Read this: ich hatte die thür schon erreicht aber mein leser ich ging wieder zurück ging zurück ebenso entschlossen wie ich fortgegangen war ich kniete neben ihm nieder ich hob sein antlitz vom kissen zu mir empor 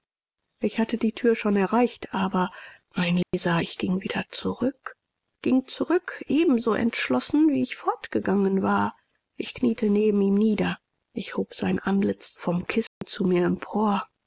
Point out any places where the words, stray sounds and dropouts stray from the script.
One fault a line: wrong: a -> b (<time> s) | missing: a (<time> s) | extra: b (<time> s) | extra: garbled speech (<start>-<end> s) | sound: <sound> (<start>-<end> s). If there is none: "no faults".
sound: dropout (3.2-3.3 s)
sound: dropout (12.9-13.0 s)